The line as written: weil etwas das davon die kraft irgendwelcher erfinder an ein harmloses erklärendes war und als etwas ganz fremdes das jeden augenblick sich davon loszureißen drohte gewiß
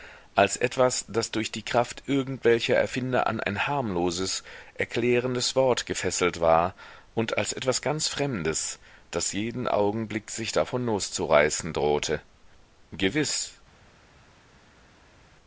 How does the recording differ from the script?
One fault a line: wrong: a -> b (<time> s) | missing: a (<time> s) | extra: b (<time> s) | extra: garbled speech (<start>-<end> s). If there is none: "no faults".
wrong: weil -> als (0.3 s)
wrong: davon -> durch (1.3 s)
extra: wort gefesselt (5.5 s)